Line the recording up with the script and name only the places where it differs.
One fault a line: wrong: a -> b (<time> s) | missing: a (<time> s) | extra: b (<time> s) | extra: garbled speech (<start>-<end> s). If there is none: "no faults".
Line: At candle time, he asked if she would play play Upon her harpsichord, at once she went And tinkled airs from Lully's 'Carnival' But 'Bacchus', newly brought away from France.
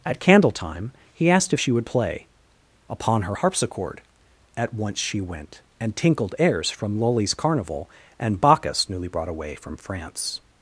missing: play (2.3 s)
wrong: But -> And (8.2 s)